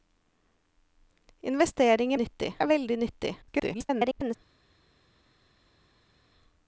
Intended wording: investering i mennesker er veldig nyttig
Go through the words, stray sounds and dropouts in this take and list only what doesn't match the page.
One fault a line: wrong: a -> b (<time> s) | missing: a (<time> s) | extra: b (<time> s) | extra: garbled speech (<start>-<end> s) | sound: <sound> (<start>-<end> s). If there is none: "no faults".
wrong: mennesker -> nyttig (2.2 s)
extra: garbled speech (3.4-4.4 s)